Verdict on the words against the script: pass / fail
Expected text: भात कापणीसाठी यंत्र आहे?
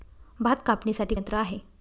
pass